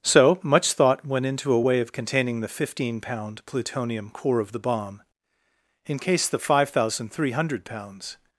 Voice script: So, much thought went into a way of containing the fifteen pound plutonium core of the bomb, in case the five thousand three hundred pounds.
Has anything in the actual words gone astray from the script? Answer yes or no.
no